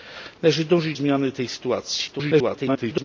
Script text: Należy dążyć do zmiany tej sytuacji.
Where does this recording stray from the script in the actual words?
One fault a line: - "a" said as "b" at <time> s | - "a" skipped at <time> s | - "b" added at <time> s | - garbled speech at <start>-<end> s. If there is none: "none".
- "do" skipped at 0.9 s
- garbled speech at 2.1-3.0 s